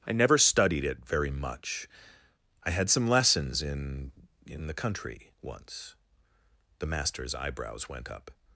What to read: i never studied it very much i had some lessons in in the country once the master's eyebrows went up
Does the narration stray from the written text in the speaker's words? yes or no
no